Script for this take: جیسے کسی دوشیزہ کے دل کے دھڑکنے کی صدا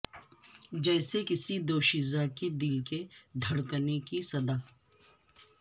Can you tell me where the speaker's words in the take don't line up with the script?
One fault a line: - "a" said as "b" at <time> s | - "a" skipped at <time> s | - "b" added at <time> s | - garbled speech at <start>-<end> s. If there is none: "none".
none